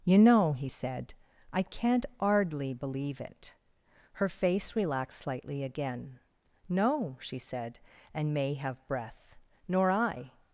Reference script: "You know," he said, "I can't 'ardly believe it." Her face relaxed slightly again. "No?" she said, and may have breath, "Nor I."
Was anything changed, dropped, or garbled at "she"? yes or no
no